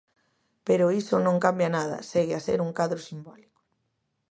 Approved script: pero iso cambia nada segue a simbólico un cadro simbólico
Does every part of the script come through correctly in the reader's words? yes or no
no